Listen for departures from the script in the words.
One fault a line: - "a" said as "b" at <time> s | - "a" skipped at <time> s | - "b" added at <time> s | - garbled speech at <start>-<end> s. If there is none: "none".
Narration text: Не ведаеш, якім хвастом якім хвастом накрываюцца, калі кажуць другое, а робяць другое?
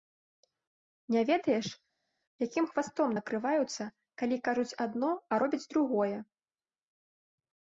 - "якім хвастом" skipped at 3.1 s
- "другое" said as "адно" at 4.9 s